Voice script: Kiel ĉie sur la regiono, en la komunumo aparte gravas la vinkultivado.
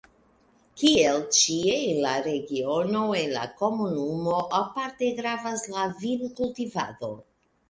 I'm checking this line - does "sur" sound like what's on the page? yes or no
no